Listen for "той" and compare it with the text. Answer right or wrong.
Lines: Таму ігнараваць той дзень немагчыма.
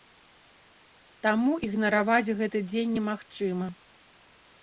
wrong